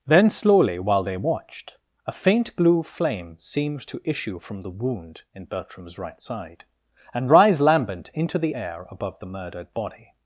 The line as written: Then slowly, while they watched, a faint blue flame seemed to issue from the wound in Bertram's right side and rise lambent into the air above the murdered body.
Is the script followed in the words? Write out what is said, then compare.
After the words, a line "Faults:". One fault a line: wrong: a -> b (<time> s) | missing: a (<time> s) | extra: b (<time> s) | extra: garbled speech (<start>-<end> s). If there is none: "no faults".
Then slowly, while they watched, a faint blue flame seemed to issue from the wound in Bertram's right side and rise lambent into the air above the murdered body.
Faults:
no faults